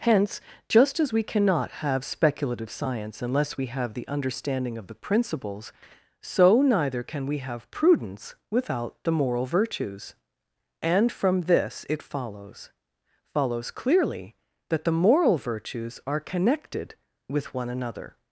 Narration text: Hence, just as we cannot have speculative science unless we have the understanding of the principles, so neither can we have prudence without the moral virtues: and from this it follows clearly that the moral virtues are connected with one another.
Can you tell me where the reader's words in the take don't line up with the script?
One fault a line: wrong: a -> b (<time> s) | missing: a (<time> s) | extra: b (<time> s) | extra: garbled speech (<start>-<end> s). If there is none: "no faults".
extra: follows (13.3 s)